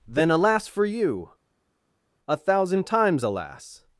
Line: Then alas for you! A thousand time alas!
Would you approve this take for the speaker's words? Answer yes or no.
no